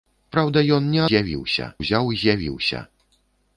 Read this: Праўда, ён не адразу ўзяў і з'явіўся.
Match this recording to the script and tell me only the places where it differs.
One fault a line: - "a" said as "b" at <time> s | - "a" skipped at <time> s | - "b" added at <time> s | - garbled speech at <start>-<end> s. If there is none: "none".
- "адразу" said as "з'явіўся" at 1.1 s